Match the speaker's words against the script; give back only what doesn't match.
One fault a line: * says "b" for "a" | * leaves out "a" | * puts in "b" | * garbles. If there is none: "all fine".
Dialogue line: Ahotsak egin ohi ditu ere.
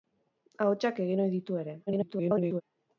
* garbles